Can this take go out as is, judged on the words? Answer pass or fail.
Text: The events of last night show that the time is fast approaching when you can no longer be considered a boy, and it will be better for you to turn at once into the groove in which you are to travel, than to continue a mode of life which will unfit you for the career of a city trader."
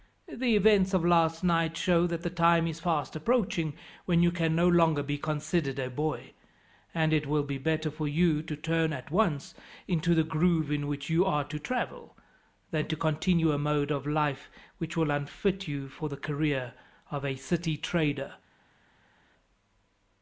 pass